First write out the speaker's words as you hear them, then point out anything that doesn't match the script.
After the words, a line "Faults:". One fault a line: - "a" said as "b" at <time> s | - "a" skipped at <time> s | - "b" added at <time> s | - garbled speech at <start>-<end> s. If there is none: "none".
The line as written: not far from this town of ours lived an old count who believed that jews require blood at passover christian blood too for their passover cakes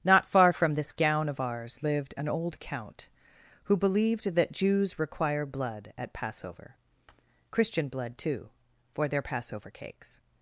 not far from this gown of ours lived an old count who believed that jews require blood at passover christian blood too for their passover cakes
Faults:
- "town" said as "gown" at 0.9 s